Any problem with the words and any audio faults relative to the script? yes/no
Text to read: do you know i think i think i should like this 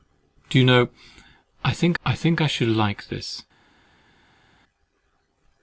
no